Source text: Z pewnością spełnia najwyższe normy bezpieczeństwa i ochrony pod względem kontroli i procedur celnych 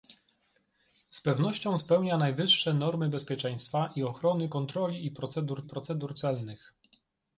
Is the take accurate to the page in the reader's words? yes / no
no